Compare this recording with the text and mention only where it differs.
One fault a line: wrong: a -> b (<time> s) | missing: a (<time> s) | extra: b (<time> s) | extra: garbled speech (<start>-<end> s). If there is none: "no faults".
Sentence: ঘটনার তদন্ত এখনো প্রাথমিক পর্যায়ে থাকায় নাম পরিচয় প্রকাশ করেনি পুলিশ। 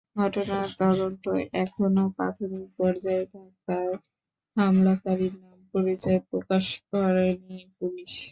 extra: হামলাকারীর (4.6 s)